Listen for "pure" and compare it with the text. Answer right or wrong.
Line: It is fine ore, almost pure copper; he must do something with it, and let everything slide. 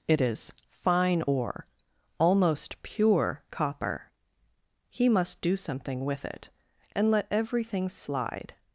right